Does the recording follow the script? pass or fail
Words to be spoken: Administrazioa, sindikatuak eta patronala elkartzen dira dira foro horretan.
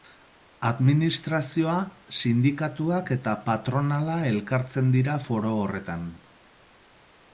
fail